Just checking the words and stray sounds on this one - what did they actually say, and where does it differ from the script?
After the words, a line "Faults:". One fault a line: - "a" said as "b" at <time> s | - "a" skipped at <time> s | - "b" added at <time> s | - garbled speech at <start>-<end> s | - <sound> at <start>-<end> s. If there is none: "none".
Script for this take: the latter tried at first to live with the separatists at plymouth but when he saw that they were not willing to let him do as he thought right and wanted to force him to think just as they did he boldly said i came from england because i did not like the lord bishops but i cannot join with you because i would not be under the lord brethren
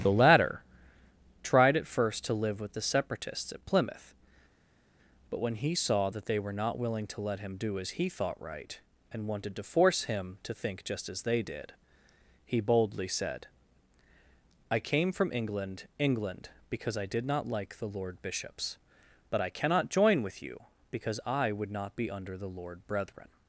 the latter tried at first to live with the separatists at plymouth but when he saw that they were not willing to let him do as he thought right and wanted to force him to think just as they did he boldly said i came from england england because i did not like the lord bishops but i cannot join with you because i would not be under the lord brethren
Faults:
- "england" added at 16.0 s